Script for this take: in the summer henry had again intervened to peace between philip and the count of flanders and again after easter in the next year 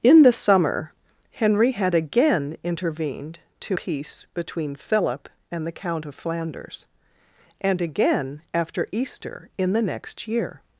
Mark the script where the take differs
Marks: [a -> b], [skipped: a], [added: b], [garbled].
in the summer henry had again intervened to peace between philip and the count of flanders and again after easter in the next year